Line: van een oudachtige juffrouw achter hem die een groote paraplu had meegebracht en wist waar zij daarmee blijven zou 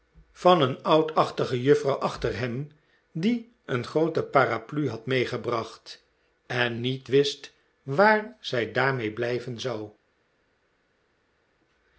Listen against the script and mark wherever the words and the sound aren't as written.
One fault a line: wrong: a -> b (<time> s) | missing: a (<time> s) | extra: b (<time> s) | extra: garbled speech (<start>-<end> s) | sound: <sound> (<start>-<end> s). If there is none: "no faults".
extra: niet (6.8 s)